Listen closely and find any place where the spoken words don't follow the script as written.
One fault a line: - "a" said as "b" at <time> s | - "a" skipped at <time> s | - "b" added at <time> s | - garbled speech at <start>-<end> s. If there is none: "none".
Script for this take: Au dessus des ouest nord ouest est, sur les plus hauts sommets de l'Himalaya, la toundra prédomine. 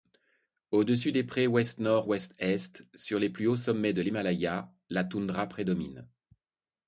- "prés" added at 1.2 s